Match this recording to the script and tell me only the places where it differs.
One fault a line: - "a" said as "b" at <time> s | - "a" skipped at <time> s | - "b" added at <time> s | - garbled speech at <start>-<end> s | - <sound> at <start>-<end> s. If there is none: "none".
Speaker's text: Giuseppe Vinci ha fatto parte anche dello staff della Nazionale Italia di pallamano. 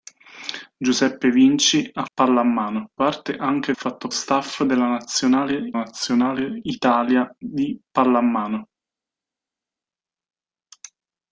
- "fatto" said as "pallamano" at 2.1 s
- "dello" said as "fatto" at 3.7 s
- "Nazionale" added at 5.7 s